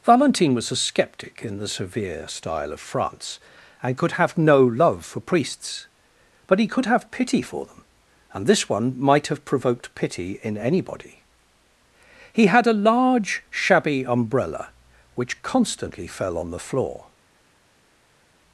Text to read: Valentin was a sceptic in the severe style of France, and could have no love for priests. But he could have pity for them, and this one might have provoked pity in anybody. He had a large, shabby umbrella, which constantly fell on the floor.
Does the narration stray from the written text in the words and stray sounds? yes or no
no